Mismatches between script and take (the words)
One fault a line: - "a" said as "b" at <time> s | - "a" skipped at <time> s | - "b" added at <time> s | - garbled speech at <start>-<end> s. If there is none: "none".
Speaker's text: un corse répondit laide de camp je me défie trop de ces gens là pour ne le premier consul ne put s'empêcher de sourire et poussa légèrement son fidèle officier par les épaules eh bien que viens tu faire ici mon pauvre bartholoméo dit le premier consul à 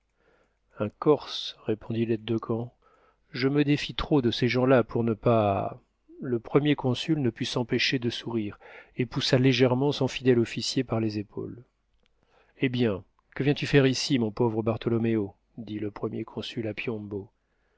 - "pas" added at 5.1 s